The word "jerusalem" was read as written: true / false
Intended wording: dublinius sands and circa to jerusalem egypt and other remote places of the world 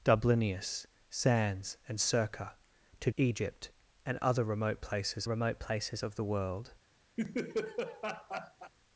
false